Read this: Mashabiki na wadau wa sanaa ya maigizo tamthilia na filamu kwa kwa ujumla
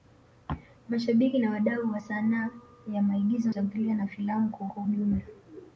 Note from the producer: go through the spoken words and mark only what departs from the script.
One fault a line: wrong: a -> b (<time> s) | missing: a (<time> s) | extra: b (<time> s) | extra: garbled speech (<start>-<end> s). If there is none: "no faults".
no faults